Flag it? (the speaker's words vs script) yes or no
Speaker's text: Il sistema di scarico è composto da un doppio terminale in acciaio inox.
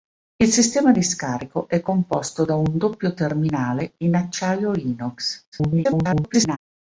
yes